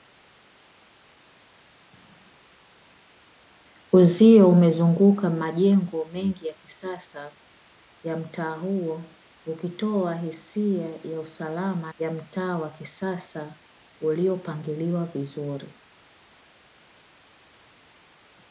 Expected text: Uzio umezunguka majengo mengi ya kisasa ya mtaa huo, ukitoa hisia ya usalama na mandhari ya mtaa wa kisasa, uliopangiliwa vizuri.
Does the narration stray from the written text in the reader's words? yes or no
yes